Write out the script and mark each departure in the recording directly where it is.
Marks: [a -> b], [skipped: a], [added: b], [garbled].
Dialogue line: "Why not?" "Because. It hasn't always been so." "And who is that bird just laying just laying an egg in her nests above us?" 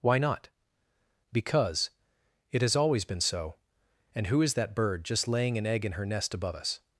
"Why not?" "Because. It [hasn't -> has] always been so." "And who is that bird just laying [skipped: just laying] an egg in her [nests -> nest] above us?"